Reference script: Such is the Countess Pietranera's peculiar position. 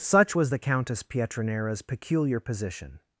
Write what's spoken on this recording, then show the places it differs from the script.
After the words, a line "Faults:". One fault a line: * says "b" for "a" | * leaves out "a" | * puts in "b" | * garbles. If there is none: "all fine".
Such was the Countess Pietranera's peculiar position.
Faults:
* says "was" for "is"